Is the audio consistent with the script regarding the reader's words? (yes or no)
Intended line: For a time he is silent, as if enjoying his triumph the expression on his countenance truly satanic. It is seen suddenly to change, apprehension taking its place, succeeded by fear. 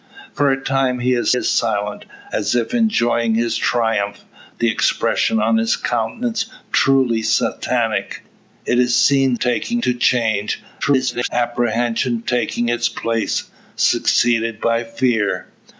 no